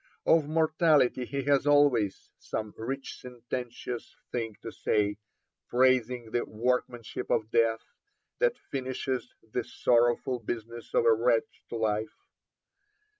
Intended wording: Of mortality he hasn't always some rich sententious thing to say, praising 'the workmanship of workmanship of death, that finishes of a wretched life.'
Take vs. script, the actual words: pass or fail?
fail